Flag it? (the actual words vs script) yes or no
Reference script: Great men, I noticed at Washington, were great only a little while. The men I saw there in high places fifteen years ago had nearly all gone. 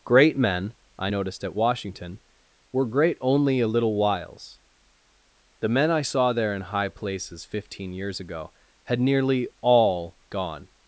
yes